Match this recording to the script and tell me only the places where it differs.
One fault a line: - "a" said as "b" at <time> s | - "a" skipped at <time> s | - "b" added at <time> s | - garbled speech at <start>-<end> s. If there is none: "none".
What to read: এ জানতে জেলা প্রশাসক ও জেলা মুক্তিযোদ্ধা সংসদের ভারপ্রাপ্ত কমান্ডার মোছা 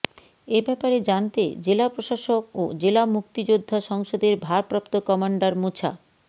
- "ব্যাপারে" added at 0.7 s